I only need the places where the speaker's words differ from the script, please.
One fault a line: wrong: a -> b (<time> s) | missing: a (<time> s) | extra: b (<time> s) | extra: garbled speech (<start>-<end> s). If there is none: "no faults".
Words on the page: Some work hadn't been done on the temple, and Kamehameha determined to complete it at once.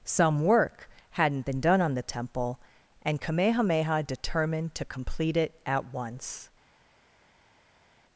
no faults